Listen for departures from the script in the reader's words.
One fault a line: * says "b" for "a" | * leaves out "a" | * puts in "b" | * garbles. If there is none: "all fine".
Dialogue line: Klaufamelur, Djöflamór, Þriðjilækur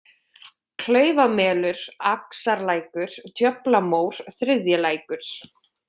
* puts in "Axarlækur"